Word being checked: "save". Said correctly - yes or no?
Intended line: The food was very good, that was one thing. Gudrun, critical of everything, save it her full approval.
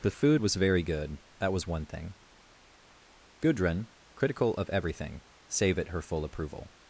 yes